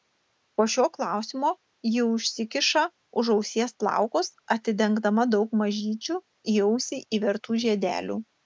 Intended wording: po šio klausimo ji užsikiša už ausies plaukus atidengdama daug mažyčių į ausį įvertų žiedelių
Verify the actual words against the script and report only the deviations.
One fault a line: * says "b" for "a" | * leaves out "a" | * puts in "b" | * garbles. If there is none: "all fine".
all fine